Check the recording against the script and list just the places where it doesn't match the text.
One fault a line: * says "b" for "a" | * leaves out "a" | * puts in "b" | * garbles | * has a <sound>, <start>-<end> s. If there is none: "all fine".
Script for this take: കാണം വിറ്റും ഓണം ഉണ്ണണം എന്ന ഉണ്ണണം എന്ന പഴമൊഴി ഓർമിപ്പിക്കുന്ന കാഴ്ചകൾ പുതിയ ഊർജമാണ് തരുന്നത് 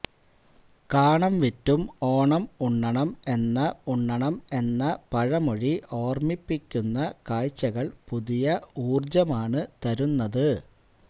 all fine